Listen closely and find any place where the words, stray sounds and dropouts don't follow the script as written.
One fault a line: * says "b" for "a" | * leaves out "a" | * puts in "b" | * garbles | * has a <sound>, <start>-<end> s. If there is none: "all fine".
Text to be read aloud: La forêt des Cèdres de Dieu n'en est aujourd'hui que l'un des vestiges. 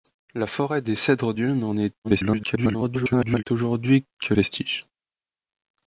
* leaves out "de"
* garbles
* leaves out "l'un des"